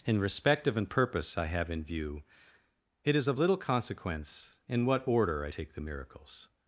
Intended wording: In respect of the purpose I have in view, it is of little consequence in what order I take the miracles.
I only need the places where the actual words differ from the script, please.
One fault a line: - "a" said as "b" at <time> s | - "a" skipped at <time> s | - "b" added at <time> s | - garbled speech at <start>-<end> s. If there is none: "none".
- "the" said as "an" at 0.8 s